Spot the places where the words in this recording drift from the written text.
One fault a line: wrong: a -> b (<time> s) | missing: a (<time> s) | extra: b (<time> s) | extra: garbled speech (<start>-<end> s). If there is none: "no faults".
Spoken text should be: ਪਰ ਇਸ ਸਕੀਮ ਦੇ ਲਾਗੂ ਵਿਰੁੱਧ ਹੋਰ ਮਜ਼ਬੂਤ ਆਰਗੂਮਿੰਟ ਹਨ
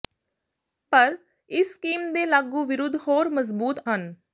missing: ਆਰਗੂਮਿੰਟ (3.8 s)